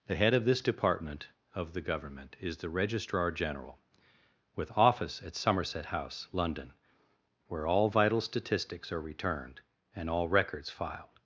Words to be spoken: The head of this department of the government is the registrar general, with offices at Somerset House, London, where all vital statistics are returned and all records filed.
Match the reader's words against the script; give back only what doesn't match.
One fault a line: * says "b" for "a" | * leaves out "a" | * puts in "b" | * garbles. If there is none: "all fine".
* says "office" for "offices"